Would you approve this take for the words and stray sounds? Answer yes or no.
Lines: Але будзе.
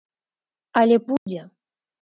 no